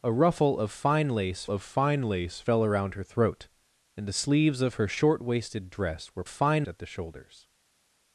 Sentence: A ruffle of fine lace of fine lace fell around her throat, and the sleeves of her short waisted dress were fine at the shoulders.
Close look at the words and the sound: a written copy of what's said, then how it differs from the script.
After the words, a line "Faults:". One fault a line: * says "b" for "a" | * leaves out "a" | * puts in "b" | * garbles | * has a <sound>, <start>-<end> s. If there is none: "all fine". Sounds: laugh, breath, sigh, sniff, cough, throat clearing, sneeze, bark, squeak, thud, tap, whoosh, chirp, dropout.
A ruffle of fine lace of fine lace fell around her throat, and the sleeves of her short waisted dress were fine at the shoulders.
Faults:
all fine